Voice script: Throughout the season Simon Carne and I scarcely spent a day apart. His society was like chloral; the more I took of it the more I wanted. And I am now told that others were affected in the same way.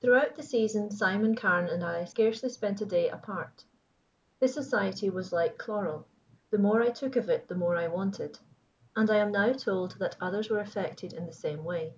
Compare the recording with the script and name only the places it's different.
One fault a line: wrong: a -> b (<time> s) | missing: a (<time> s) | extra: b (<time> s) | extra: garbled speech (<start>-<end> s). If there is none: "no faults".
no faults